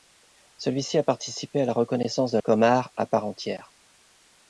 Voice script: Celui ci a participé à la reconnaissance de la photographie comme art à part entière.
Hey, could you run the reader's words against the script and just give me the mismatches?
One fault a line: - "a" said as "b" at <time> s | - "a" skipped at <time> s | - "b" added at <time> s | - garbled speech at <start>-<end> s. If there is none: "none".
- "la photographie" skipped at 2.4 s